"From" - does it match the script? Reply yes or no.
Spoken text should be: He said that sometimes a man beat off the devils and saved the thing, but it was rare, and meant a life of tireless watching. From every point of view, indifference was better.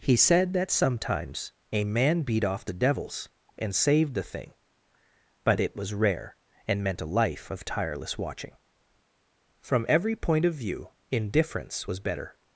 yes